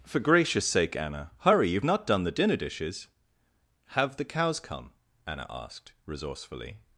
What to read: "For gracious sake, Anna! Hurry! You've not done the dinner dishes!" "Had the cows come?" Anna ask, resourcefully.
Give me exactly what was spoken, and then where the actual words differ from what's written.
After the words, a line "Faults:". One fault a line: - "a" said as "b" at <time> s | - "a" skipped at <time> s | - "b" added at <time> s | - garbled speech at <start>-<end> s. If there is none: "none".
"For gracious sake, Anna! Hurry! You've not done the dinner dishes!" "Have the cows come?" Anna asked, resourcefully.
Faults:
- "Had" said as "Have" at 3.9 s
- "ask" said as "asked" at 5.5 s